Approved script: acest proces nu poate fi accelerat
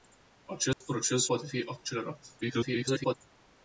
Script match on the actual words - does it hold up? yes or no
no